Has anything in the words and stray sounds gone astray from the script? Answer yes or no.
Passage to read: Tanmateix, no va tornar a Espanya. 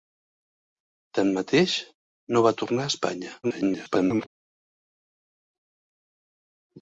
yes